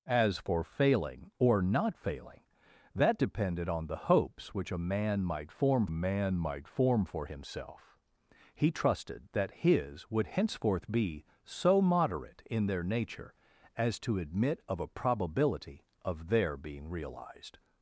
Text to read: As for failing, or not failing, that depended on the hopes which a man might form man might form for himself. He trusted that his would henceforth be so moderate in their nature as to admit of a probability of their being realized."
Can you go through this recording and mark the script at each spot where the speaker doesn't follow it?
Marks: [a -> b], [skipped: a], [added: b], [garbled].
As for failing, or not failing, that depended on the hopes which a man might form man might form for himself. He trusted that his would henceforth be so moderate in their nature as to admit of a probability of their being realized."